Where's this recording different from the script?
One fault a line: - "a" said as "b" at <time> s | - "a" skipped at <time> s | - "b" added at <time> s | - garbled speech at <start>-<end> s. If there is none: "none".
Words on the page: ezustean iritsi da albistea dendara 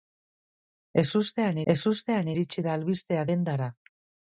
- "ezustean" added at 1.7 s